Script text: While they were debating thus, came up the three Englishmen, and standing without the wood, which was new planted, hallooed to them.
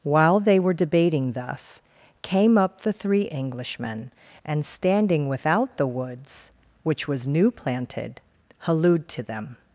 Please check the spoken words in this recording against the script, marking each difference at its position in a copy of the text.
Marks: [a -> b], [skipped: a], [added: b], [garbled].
While they were debating thus, came up the three Englishmen, and standing without the [wood, -> woods] which was new planted, hallooed to them.